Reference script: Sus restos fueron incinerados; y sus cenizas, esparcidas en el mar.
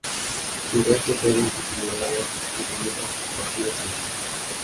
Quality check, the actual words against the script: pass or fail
pass